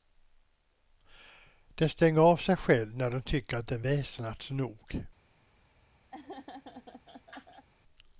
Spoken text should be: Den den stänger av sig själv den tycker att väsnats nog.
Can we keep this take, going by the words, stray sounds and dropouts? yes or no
no